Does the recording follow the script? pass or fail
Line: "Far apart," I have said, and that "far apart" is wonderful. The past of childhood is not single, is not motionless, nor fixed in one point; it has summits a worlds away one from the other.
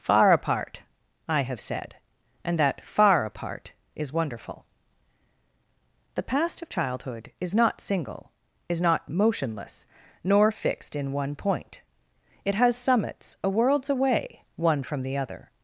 pass